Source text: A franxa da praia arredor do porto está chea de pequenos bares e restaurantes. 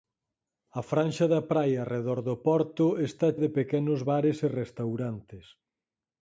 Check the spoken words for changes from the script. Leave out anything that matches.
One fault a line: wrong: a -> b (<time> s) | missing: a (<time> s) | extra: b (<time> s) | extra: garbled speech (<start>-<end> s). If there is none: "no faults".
missing: chea (3.3 s)